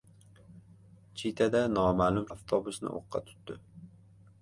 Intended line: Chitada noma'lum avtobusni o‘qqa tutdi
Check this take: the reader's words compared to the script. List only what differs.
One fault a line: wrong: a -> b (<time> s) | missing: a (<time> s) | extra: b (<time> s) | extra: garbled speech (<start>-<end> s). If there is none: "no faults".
no faults